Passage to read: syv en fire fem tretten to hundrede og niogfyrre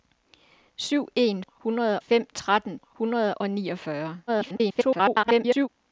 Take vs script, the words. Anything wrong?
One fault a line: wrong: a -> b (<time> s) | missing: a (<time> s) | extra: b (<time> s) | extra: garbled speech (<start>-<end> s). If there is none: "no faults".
wrong: fire -> hundrede (1.5 s)
missing: to (2.8 s)
extra: garbled speech (4.3-5.7 s)